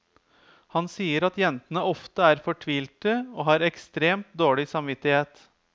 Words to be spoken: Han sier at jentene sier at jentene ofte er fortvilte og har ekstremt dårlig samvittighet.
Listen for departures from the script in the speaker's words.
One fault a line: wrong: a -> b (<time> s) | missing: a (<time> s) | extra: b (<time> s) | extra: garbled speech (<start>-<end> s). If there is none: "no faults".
missing: sier at jentene (1.8 s)